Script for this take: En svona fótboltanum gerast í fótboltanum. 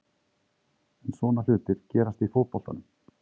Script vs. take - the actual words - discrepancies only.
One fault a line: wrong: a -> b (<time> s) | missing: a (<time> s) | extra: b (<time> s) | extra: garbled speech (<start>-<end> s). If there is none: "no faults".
wrong: fótboltanum -> hlutir (1.5 s)